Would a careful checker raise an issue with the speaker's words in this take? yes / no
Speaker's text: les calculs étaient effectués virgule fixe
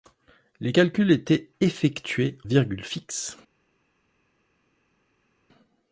no